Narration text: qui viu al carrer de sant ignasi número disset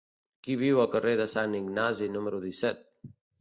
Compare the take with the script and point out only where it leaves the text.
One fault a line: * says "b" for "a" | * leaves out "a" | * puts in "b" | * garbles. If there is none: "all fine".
all fine